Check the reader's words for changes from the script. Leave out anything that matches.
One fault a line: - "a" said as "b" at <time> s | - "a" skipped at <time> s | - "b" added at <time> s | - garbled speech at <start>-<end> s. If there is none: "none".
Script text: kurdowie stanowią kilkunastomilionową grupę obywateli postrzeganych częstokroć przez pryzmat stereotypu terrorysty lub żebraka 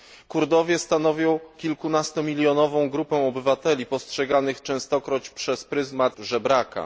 - "stereotypu terrorysty lub" skipped at 6.2 s